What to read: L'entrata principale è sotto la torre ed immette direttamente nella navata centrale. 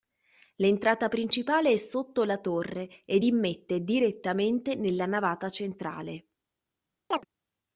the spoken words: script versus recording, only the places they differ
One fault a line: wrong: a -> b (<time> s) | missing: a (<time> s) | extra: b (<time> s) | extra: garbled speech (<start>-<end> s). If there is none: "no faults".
no faults